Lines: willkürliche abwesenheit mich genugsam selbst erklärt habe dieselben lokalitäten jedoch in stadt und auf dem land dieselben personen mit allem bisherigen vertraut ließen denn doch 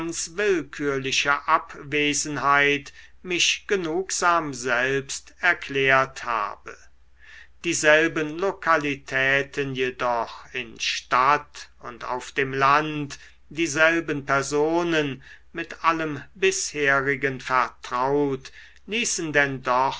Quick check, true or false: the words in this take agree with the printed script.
true